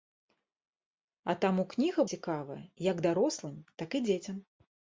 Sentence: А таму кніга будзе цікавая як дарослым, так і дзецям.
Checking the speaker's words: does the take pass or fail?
fail